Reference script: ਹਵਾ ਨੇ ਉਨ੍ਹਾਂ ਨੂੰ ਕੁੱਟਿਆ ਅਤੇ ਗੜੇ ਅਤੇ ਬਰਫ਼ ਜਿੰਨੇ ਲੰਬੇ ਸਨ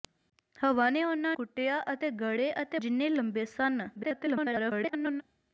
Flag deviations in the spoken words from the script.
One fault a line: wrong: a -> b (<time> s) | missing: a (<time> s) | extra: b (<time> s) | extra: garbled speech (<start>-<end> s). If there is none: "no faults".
missing: ਨੂੰ (1.4 s)
missing: ਬਰਫ਼ (2.8 s)
extra: garbled speech (4.0-5.2 s)